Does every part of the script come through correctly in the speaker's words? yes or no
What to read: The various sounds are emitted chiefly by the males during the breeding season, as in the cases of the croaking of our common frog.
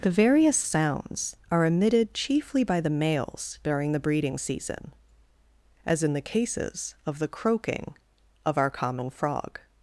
yes